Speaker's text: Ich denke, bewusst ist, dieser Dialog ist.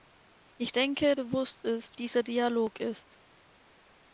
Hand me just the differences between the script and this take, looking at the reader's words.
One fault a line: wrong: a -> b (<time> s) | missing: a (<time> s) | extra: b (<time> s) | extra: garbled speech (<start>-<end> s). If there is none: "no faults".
no faults